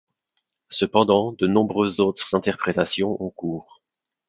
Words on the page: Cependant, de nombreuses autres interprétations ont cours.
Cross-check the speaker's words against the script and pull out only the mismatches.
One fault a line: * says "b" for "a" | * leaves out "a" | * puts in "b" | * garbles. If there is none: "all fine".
all fine